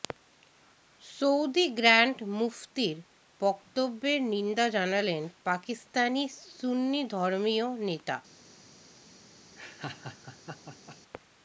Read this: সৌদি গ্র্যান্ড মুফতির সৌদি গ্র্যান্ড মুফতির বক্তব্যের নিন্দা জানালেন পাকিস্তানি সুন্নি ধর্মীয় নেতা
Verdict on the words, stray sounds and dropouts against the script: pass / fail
fail